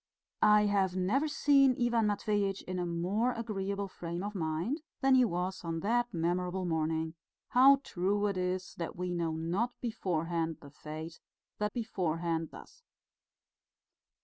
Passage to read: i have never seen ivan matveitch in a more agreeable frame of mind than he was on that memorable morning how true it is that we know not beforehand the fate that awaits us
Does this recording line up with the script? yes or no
no